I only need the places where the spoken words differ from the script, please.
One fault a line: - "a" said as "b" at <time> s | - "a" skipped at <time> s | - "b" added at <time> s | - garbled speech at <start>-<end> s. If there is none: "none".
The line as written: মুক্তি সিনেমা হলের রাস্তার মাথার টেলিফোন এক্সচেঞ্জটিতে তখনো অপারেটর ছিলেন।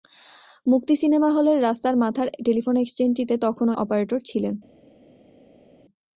none